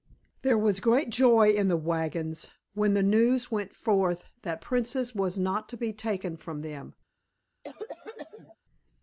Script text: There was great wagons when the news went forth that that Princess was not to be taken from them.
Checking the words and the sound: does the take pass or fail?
fail